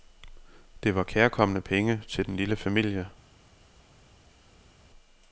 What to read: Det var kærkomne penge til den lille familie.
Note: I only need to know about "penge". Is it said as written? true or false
true